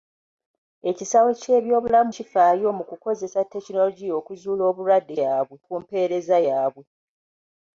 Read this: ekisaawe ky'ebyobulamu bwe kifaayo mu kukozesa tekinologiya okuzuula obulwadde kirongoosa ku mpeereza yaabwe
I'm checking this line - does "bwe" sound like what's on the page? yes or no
no